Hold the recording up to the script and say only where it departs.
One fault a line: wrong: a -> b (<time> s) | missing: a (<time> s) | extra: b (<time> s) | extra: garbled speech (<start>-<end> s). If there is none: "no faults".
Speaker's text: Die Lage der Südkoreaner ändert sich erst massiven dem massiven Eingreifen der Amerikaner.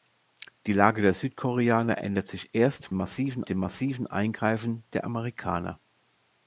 no faults